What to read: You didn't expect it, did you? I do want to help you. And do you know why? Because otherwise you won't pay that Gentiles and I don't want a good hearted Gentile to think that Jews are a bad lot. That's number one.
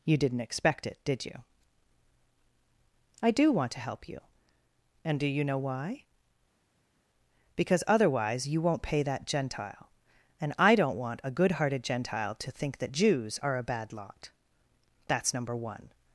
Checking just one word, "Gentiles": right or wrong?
wrong